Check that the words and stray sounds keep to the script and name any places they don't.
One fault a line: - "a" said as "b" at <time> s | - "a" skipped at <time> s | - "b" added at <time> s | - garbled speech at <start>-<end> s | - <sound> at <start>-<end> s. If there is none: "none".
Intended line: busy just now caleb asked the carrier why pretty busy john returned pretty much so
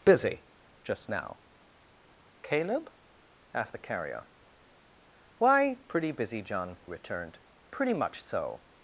none